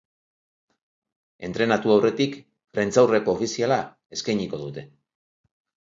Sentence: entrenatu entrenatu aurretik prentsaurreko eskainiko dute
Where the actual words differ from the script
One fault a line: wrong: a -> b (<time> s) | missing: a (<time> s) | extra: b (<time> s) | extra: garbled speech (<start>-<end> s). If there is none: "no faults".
missing: entrenatu (1.9 s)
extra: ofiziala (3.4 s)